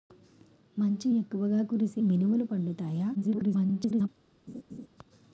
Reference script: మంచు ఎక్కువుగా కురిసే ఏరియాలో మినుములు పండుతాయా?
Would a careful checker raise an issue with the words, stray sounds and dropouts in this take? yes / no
yes